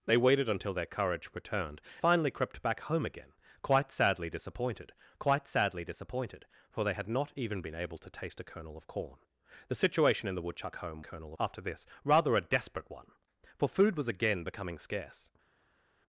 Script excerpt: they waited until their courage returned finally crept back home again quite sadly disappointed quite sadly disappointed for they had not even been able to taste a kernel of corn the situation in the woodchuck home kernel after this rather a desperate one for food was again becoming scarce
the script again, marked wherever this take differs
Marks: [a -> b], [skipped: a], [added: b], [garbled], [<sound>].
they waited until their courage returned finally crept back home again quite sadly disappointed quite sadly disappointed for they had not even been able to taste a kernel of corn the situation in the woodchuck home kernel after this rather a desperate one for food was again becoming scarce